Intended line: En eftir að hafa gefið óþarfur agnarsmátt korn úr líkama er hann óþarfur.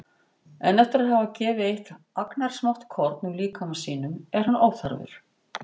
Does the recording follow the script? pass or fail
fail